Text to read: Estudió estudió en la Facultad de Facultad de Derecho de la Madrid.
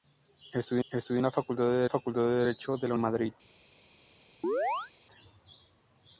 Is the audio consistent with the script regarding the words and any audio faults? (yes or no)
no